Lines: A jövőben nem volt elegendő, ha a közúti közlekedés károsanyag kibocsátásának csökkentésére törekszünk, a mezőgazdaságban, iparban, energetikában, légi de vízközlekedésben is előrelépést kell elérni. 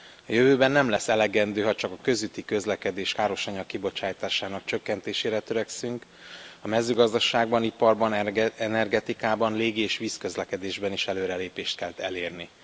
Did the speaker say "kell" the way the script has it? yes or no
yes